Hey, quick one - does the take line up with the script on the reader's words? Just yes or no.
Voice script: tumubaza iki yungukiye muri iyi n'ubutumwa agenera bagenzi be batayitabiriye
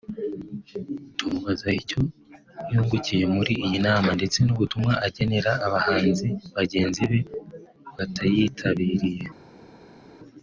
no